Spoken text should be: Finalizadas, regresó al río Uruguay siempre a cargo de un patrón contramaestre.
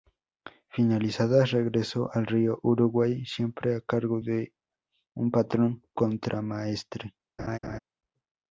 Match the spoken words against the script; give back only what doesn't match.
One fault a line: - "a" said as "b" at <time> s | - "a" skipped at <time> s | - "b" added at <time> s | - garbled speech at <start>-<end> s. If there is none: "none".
none